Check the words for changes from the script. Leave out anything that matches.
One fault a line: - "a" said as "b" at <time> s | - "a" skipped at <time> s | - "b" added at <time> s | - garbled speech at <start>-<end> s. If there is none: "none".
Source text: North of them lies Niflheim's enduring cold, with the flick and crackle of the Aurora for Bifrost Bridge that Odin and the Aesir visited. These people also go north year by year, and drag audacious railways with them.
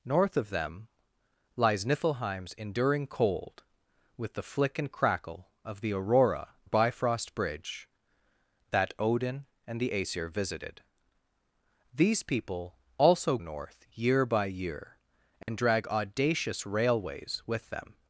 - "for" skipped at 6.5 s
- "go" skipped at 13.4 s